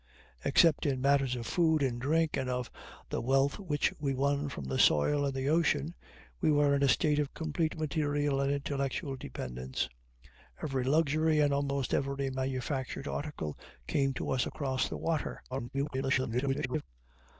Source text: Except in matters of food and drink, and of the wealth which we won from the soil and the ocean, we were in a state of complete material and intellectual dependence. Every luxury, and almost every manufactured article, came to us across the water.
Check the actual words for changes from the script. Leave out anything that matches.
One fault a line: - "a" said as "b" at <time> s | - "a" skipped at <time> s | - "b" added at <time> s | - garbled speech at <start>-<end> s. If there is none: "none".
- garbled speech at 15.5-16.9 s